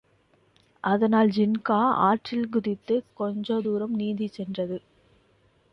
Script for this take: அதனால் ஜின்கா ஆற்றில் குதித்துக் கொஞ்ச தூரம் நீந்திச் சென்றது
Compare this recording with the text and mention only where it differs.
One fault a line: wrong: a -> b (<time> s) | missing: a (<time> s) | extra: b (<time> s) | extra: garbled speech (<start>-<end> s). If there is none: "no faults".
no faults